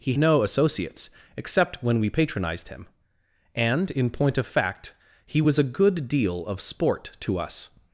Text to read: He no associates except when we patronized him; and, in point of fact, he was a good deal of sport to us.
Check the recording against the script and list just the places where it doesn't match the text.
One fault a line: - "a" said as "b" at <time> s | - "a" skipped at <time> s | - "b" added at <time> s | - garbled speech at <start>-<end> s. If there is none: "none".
none